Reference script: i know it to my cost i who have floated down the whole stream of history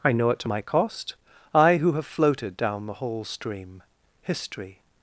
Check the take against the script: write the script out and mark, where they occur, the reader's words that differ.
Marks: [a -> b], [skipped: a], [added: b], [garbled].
i know it to my cost i who have floated down the whole stream [skipped: of] history